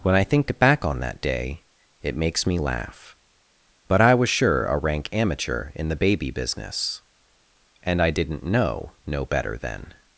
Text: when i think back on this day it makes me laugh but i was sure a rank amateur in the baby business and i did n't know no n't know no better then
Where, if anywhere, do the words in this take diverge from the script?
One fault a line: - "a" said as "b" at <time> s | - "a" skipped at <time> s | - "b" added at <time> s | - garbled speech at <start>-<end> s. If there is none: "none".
- "this" said as "that" at 1.0 s
- "n't know no" skipped at 9.2 s